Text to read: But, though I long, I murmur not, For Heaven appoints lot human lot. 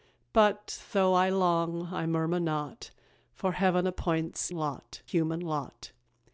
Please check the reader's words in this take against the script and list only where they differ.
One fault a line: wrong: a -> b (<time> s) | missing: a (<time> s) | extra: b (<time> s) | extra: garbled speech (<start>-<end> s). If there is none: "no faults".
no faults